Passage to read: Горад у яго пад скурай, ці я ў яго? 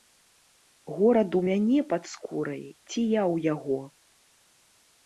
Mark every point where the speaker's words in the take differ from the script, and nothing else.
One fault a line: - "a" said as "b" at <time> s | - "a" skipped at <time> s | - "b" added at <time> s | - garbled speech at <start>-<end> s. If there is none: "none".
- "яго" said as "мяне" at 1.5 s